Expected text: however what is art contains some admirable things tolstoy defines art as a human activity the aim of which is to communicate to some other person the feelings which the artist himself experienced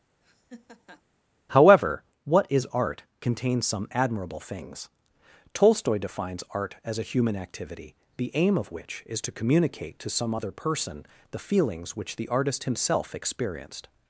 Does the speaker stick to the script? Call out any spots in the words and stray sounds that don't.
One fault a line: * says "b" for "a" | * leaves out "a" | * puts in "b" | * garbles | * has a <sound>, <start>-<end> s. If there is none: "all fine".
* has a laugh, 0.2-1.0 s